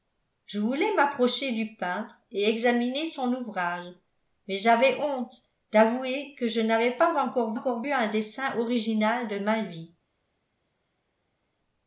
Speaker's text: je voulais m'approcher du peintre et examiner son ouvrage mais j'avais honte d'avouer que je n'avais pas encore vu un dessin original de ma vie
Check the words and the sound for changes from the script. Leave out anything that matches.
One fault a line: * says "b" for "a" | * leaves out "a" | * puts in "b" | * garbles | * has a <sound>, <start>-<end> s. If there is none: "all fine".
* puts in "encore"